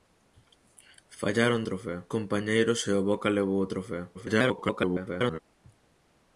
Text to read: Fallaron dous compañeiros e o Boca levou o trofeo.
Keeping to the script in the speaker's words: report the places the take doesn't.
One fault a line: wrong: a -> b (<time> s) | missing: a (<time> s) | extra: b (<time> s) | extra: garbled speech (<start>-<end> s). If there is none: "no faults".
wrong: dous -> trofeo (1.7 s)
extra: garbled speech (4.1-5.4 s)